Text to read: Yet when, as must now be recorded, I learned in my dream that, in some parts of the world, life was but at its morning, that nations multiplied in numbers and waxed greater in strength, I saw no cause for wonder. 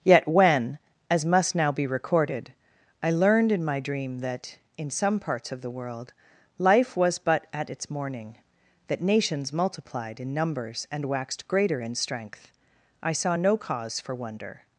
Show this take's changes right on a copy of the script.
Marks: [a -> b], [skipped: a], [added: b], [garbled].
Yet when, as must now be recorded, I learned in my dream that, in some parts of the world, life was but at its morning, that nations multiplied in numbers and waxed greater in strength, I saw no cause for wonder.